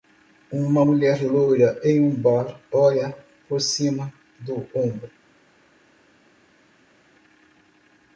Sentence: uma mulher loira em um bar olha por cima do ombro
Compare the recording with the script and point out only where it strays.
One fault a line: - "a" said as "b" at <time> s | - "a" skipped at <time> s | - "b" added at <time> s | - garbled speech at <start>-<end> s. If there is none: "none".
none